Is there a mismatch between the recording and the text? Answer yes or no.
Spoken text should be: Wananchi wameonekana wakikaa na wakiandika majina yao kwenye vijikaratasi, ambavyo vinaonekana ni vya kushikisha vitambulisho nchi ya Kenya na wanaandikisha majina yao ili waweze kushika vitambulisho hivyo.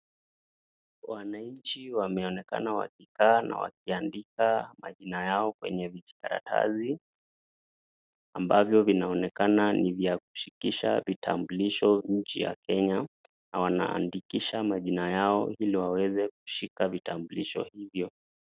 no